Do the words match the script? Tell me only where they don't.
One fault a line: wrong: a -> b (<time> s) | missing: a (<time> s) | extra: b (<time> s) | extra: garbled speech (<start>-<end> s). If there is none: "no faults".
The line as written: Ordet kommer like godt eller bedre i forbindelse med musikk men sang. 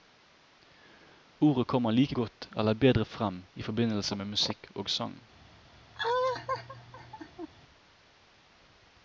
extra: frem (3.0 s)
wrong: men -> og (4.7 s)